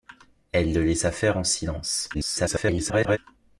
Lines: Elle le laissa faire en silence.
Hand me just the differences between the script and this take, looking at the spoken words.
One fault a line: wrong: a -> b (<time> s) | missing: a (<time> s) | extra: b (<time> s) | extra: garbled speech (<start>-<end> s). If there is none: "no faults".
extra: garbled speech (2.1-3.2 s)